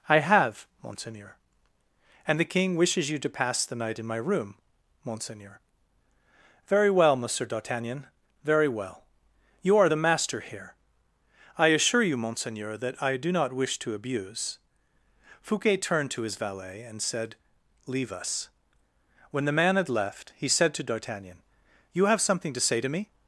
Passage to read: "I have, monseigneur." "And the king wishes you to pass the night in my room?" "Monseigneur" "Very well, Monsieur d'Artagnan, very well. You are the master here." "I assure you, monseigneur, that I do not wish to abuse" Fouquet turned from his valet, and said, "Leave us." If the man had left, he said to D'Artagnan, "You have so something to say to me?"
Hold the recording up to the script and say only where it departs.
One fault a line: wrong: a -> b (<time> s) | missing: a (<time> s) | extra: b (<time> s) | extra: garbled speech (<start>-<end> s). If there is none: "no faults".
wrong: from -> to (16.1 s)
wrong: If -> When (19.3 s)
missing: so (22.2 s)